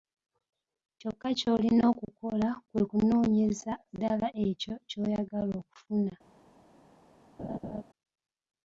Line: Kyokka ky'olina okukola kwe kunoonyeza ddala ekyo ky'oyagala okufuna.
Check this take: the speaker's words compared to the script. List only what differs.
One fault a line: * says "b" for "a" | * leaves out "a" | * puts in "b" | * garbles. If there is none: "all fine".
all fine